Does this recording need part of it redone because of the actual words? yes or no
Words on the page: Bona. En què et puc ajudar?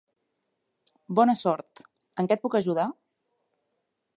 yes